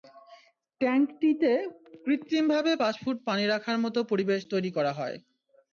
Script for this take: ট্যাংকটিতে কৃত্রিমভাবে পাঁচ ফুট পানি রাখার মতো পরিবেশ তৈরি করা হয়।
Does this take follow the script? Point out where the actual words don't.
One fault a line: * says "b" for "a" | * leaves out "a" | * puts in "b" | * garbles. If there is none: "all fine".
all fine